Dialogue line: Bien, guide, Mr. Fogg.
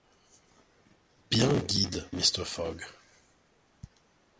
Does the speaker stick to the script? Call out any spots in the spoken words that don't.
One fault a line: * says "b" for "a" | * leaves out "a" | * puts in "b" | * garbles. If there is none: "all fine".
all fine